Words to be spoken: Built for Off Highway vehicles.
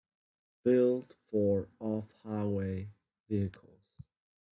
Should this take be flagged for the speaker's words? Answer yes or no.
no